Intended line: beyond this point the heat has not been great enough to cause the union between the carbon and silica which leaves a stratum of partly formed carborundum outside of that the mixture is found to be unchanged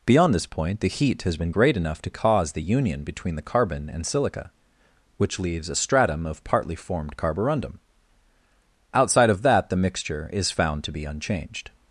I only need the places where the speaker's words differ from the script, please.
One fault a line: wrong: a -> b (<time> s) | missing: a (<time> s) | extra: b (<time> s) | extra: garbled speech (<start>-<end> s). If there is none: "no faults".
missing: not (1.4 s)